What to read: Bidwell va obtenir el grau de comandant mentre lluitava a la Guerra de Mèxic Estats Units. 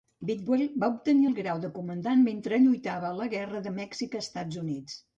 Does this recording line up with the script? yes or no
yes